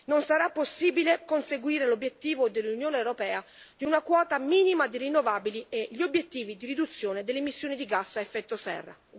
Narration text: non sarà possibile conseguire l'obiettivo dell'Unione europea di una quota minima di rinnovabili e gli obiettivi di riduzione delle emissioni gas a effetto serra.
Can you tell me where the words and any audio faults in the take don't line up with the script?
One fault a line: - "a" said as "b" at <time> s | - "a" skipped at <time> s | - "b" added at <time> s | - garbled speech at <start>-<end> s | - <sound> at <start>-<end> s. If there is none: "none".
- "di" added at 7.7 s